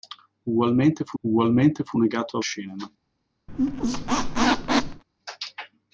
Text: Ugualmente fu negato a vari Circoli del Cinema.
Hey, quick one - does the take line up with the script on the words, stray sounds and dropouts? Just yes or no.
no